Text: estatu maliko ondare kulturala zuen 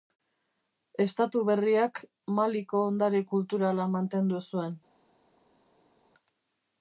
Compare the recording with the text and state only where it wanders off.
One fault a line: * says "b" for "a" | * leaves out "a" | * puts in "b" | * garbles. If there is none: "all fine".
* puts in "berriak"
* puts in "mantendu"